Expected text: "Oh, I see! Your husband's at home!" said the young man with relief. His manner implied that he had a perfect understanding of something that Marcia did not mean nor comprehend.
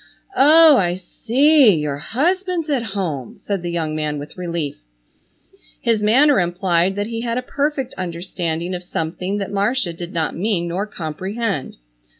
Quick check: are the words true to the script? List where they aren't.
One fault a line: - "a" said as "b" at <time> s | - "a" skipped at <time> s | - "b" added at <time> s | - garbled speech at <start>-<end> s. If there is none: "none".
none